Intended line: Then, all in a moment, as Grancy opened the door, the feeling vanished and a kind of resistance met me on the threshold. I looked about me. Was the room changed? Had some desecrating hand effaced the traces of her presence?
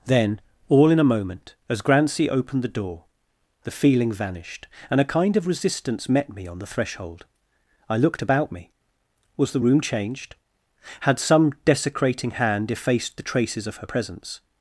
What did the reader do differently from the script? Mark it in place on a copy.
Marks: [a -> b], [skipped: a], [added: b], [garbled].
Then, all in a moment, as Grancy opened the door, the feeling vanished and a kind of resistance met me on the threshold. I looked about me. Was the room changed? Had some desecrating hand effaced the traces of her presence?